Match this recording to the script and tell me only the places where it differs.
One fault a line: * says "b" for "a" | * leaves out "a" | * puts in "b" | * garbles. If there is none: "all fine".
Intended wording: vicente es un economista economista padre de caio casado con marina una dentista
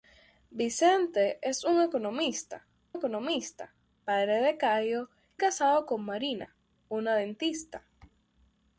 all fine